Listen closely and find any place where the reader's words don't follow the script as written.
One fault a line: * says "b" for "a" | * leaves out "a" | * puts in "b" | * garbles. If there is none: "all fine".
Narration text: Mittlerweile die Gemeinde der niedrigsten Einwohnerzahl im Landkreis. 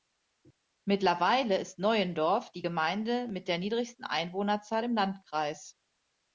* puts in "ist Neuendorf"
* puts in "mit"